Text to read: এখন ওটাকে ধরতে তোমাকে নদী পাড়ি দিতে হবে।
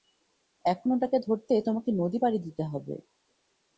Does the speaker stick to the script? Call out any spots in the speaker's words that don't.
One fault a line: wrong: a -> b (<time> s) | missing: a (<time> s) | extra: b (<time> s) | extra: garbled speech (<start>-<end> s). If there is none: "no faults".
no faults